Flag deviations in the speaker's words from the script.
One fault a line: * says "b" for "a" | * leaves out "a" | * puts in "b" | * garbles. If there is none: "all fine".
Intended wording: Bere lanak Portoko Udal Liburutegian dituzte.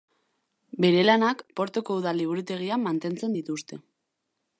* puts in "mantentzen"